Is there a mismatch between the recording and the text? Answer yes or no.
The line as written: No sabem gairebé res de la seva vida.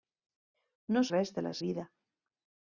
yes